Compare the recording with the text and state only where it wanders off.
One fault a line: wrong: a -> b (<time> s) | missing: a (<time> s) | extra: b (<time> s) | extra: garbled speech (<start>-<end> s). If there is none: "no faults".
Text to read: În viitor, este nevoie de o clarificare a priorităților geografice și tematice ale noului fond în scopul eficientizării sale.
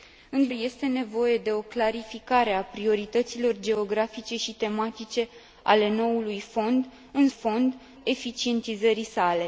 missing: viitor (0.5 s)
wrong: scopul -> fond (7.3 s)